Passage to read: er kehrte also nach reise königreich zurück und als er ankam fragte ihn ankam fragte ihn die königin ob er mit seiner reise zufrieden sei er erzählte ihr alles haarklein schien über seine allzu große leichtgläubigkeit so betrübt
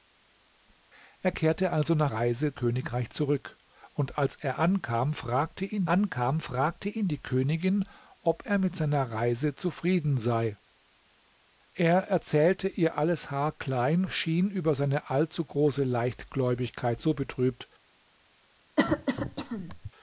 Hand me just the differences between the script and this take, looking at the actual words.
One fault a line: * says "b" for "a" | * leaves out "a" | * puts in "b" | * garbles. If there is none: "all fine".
all fine